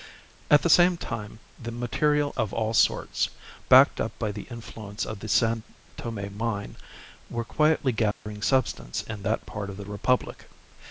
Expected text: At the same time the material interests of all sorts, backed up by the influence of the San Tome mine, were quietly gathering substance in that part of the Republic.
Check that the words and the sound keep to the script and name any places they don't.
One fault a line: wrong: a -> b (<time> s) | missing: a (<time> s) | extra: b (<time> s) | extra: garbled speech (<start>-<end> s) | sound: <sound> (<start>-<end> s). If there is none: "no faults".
missing: interests (2.3 s)
sound: dropout (8.1-8.3 s)